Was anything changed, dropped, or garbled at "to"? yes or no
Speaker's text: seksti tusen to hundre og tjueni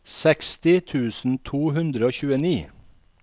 no